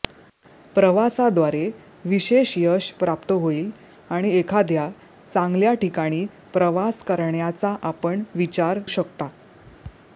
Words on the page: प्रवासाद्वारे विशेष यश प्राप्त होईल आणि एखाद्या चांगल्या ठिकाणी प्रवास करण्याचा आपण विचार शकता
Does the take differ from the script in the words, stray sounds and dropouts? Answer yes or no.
no